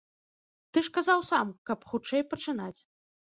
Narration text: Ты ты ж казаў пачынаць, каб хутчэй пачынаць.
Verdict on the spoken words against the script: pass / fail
fail